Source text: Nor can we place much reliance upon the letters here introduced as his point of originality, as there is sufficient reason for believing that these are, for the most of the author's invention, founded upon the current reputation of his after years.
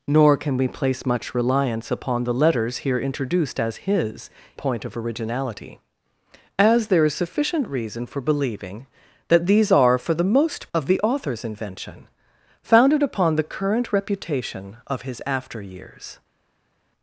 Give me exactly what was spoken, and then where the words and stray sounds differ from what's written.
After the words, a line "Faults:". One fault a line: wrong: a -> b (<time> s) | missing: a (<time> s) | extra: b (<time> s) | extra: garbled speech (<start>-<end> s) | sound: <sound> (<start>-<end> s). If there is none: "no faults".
Nor can we place much reliance upon the letters here introduced as his point of originality, as there is sufficient reason for believing that these are, for the most of the author's invention, founded upon the current reputation of his after years.
Faults:
no faults